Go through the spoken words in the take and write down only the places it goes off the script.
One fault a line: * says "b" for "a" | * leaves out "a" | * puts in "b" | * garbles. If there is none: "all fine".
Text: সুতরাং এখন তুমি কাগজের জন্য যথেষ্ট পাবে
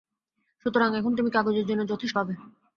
all fine